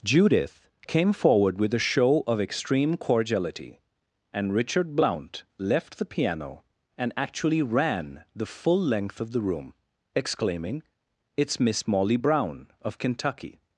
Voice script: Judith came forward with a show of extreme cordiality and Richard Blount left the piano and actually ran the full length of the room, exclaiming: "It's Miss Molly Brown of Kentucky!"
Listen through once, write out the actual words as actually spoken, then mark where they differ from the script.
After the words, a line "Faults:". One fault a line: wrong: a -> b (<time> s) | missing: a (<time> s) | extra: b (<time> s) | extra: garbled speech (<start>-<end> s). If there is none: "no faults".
Judith came forward with a show of extreme cordiality and Richard Blount left the piano and actually ran the full length of the room, exclaiming: "It's Miss Molly Brown of Kentucky!"
Faults:
no faults